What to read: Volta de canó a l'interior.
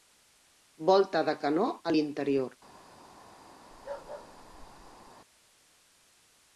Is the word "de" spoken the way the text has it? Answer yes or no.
yes